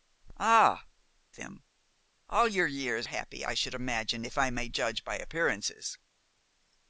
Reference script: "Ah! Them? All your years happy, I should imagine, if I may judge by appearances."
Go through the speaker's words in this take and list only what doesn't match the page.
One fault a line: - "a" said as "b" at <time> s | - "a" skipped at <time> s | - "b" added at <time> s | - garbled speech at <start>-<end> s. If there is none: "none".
none